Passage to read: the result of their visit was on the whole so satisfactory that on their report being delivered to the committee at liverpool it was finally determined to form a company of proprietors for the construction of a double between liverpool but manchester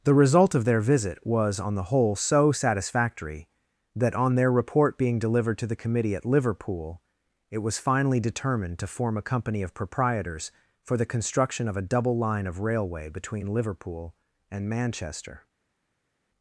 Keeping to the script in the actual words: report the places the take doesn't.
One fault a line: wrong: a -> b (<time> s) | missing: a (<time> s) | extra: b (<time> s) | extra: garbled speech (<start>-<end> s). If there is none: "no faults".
extra: line of railway (12.2 s)
wrong: but -> and (14.5 s)